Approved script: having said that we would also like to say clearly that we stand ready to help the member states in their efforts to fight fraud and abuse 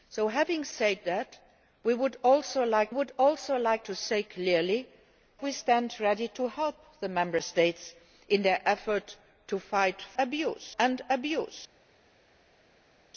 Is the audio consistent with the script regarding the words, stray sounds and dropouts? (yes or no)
no